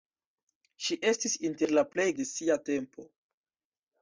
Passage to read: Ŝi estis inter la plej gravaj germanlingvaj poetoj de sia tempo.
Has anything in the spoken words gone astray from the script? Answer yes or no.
yes